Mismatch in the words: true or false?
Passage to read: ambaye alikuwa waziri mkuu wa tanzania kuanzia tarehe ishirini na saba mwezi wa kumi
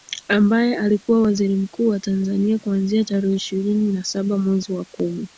false